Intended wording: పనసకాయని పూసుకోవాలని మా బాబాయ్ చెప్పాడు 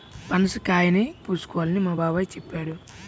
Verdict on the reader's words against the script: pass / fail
pass